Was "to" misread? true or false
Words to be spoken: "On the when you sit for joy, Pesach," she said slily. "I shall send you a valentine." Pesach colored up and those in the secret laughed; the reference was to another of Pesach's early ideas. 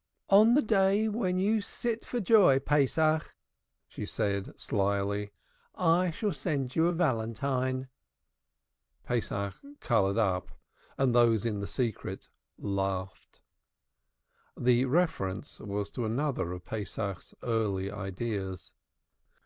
false